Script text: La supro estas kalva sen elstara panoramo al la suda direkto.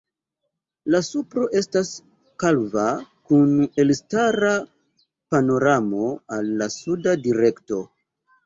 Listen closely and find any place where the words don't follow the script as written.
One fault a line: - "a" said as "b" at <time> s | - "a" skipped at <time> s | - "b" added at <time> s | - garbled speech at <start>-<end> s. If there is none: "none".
- "sen" said as "kun" at 3.3 s